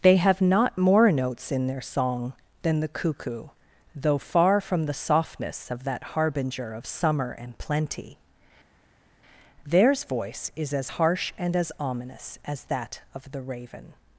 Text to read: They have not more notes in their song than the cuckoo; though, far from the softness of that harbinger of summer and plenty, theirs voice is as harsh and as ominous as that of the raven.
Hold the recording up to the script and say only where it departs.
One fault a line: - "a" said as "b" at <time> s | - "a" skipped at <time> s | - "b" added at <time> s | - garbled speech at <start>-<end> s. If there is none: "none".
none